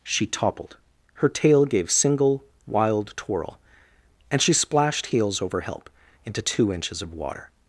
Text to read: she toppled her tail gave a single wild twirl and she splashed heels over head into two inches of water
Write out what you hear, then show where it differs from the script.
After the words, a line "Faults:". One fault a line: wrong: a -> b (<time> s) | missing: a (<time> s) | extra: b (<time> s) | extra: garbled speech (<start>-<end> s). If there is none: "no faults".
she toppled her tail gave single wild twirl and she splashed heels over help into two inches of water
Faults:
missing: a (1.9 s)
wrong: head -> help (5.6 s)